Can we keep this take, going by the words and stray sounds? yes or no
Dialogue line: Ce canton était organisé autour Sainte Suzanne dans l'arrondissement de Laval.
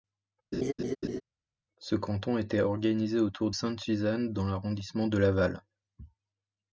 no